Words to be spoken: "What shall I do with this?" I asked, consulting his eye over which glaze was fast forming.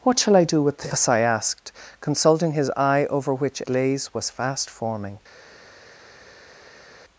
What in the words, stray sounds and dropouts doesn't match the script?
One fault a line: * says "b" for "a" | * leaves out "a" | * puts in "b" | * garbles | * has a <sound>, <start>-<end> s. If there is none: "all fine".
all fine